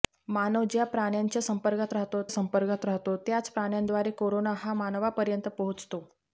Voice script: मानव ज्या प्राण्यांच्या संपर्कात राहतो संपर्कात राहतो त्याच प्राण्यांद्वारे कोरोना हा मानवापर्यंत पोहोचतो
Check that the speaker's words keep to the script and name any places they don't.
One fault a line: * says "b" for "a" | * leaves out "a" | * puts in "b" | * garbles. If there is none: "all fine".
all fine